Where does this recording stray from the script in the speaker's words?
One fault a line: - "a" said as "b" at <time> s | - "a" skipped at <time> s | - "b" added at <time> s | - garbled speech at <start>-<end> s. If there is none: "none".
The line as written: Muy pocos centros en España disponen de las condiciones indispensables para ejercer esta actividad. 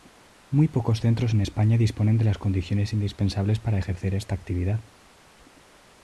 none